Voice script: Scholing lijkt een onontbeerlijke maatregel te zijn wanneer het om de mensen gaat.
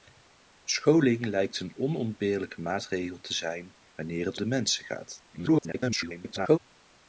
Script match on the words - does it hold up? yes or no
no